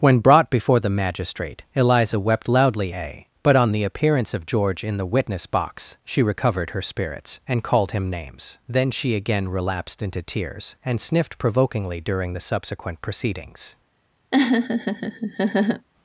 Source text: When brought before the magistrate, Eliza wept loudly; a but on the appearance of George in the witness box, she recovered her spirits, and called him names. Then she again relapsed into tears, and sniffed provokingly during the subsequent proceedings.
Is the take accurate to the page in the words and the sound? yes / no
no